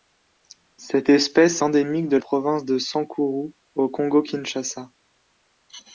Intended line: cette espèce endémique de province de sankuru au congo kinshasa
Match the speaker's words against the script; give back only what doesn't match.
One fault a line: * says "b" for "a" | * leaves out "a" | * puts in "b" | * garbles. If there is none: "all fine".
all fine